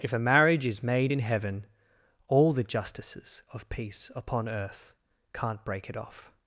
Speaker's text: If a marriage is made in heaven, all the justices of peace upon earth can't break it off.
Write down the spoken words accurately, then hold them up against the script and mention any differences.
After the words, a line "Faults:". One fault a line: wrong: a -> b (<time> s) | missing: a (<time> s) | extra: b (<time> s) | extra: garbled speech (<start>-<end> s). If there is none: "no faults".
If a marriage is made in heaven, all the justices of peace upon earth can't break it off.
Faults:
no faults